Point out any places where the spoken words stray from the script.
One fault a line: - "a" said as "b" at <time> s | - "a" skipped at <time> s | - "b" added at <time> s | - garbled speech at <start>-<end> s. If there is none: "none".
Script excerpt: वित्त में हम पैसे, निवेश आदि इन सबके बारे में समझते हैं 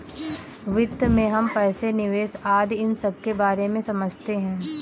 none